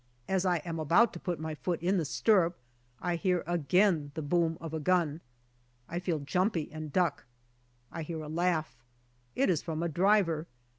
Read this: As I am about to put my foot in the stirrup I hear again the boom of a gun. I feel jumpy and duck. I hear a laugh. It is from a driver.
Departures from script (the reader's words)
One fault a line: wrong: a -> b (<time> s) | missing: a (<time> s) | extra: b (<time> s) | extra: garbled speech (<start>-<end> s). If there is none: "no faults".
no faults